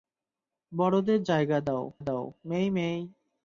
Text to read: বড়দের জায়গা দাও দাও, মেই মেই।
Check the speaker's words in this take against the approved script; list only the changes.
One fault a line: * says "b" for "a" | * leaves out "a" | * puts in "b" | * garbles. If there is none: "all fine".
all fine